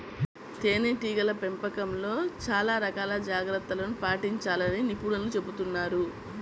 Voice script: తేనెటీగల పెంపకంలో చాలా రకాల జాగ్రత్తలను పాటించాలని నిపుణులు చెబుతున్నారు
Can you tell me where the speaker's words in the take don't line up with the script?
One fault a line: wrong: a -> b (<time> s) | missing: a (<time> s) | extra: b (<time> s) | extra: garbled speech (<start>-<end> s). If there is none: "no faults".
no faults